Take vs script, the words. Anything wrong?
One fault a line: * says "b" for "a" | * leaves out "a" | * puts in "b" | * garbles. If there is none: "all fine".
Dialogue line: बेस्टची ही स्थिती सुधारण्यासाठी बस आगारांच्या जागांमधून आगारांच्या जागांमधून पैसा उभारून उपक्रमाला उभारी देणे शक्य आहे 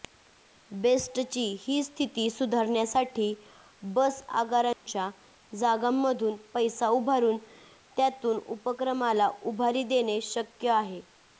* leaves out "आगारांच्या जागांमधून"
* puts in "त्यातून"